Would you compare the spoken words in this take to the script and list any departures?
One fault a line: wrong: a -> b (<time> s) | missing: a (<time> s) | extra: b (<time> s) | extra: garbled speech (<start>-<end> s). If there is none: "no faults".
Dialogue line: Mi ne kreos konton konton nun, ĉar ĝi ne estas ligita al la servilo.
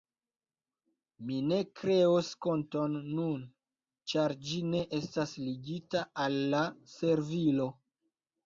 missing: konton (3.0 s)